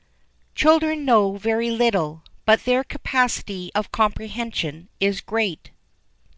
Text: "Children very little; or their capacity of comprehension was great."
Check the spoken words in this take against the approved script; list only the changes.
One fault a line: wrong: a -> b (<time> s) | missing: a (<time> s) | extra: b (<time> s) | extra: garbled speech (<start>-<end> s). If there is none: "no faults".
extra: know (1.1 s)
wrong: or -> but (2.4 s)
wrong: was -> is (5.0 s)